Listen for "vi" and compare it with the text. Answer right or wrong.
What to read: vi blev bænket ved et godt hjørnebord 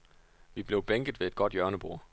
right